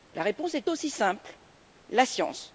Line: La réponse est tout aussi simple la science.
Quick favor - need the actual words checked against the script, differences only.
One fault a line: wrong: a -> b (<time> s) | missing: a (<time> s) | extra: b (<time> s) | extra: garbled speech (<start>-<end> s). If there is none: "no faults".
missing: tout (0.7 s)